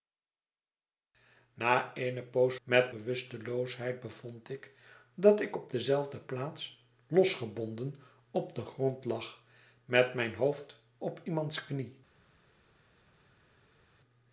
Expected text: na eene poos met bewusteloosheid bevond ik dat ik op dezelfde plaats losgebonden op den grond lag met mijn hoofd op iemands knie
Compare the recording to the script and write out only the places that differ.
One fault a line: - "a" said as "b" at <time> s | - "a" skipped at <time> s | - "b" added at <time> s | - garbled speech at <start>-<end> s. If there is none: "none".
none